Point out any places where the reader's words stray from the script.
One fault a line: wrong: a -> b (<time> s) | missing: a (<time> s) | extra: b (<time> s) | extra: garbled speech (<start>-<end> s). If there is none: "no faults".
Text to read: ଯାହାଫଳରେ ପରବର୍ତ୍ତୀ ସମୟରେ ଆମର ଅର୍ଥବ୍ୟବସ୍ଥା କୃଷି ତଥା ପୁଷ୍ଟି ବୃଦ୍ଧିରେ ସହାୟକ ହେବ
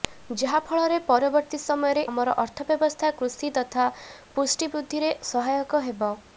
no faults